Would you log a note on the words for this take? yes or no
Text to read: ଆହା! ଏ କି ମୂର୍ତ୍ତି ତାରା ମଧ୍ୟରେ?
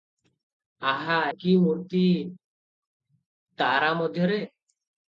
yes